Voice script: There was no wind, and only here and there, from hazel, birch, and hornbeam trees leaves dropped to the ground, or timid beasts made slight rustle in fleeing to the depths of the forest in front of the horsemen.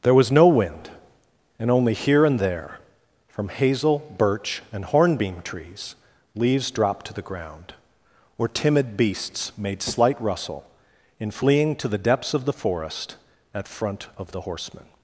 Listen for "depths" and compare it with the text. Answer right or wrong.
right